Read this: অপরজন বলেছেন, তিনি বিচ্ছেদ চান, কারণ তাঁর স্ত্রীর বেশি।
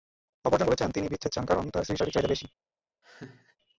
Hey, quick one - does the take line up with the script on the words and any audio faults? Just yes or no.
no